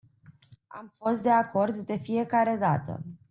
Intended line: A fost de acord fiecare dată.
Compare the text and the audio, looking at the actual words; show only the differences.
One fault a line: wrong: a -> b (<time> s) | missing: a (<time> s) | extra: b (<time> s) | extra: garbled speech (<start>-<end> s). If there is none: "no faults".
wrong: A -> Am (0.7 s)
extra: de (1.8 s)